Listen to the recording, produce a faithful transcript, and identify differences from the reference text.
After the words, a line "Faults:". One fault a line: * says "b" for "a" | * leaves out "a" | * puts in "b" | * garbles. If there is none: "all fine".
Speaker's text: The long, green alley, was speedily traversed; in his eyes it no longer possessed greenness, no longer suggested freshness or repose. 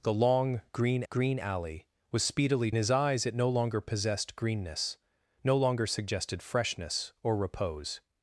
The long, green green alley, was speedily his eyes it no longer possessed greenness, no longer suggested freshness or repose.
Faults:
* puts in "green"
* leaves out "traversed in"